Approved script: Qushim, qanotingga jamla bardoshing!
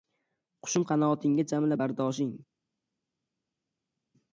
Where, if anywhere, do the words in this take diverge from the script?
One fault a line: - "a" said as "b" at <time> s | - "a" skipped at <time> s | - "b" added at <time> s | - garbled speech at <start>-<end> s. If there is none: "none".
none